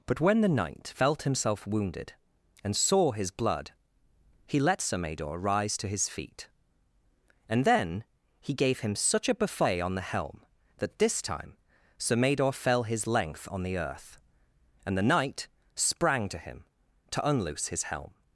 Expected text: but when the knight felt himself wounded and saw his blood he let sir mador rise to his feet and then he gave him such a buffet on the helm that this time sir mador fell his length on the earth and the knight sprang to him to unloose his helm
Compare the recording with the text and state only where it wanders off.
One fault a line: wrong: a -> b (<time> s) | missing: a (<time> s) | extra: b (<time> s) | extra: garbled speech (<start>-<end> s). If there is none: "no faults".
no faults